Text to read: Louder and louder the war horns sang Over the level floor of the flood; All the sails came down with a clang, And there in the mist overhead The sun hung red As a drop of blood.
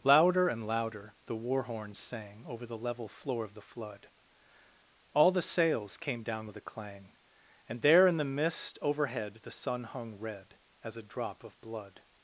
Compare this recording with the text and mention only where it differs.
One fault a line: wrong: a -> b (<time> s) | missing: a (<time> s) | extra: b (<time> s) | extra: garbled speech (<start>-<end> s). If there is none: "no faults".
no faults